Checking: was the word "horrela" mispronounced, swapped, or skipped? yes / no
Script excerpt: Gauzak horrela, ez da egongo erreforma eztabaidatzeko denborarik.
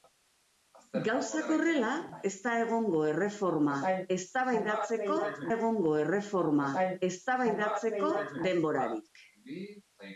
no